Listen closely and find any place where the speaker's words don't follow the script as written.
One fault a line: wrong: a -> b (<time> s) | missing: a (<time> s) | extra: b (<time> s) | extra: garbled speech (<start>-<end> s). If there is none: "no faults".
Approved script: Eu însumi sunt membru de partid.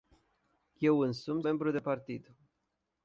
missing: sunt (1.4 s)